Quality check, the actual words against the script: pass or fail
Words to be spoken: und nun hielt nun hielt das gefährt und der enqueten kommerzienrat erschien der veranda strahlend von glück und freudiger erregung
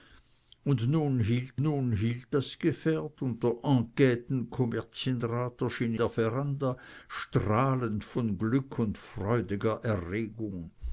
pass